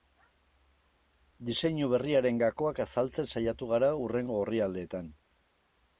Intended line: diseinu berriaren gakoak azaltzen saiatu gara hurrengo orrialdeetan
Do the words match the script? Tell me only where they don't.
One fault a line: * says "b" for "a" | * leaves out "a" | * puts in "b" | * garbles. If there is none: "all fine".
all fine